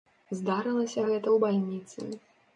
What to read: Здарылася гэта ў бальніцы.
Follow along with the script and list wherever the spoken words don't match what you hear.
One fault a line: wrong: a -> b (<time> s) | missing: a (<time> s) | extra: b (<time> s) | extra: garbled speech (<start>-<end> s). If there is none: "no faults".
no faults